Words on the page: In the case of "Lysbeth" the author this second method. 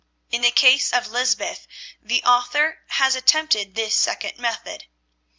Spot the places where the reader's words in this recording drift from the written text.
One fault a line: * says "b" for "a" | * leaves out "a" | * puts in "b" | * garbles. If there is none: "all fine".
* puts in "has attempted"